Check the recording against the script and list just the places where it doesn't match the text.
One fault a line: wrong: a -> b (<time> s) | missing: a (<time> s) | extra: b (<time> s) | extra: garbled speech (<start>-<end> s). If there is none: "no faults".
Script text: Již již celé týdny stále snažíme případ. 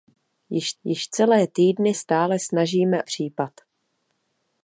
no faults